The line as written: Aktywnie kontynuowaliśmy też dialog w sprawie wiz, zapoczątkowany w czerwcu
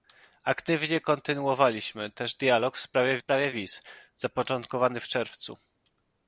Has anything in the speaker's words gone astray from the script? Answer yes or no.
yes